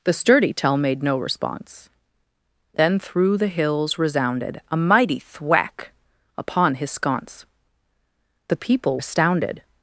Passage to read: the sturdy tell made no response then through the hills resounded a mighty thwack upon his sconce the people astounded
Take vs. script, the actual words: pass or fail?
pass